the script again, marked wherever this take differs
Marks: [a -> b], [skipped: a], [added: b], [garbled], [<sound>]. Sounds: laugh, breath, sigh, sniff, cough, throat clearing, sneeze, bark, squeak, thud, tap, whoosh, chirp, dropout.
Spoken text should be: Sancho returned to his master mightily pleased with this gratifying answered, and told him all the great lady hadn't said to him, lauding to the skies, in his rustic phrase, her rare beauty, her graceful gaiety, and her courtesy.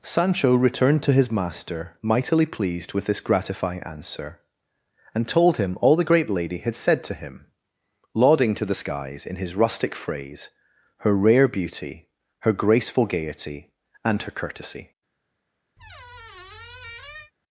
Sancho returned to his master mightily pleased with this gratifying [answered, -> answer] and told him all the great lady [hadn't -> had] said to him, lauding to the skies, in his rustic phrase, her rare beauty, her graceful gaiety, and her courtesy. [squeak]